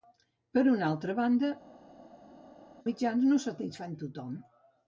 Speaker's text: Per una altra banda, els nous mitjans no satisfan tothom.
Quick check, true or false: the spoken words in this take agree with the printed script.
false